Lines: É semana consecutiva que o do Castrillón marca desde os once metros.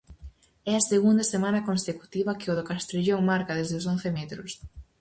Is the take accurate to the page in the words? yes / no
no